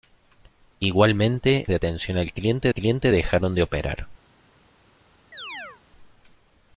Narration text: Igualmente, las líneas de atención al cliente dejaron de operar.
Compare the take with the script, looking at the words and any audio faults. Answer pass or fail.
fail